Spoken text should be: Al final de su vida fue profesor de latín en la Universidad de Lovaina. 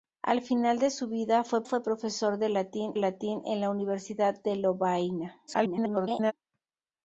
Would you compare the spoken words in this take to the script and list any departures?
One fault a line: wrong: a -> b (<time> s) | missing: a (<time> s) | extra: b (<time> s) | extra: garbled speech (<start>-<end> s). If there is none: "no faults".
extra: fue (1.6 s)
extra: latín (3.0 s)
extra: garbled speech (5.5-6.3 s)